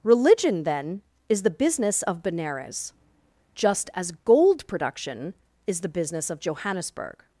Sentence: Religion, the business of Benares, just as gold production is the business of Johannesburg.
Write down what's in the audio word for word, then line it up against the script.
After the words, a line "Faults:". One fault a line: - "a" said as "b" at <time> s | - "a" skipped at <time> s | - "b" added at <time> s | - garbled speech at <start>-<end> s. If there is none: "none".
Religion, then, is the business of Benares, just as gold production is the business of Johannesburg.
Faults:
- "then is" added at 0.6 s